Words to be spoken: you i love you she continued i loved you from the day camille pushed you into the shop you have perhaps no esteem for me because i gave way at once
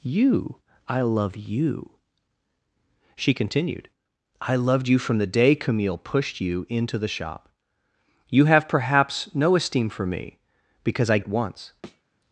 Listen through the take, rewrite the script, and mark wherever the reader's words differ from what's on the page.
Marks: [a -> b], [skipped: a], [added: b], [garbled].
you i love you she continued i loved you from the day camille pushed you into the shop you have perhaps no esteem for me because i [skipped: gave way] at once